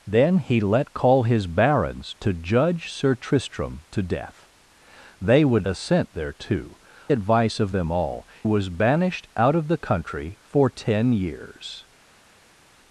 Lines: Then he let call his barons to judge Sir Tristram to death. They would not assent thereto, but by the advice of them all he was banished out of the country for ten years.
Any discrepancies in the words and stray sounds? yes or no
yes